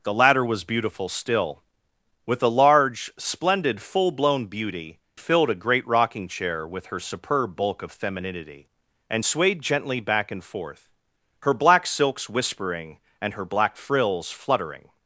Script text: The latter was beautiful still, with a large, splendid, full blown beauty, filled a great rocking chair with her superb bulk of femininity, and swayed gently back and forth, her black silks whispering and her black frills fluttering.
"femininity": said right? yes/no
yes